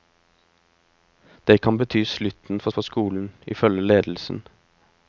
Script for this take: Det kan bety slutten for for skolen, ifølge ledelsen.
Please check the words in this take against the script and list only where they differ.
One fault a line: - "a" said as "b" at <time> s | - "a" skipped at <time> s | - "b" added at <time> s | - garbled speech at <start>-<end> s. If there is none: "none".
none